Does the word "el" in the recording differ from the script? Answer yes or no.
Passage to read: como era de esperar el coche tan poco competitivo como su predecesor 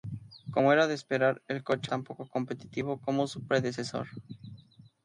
no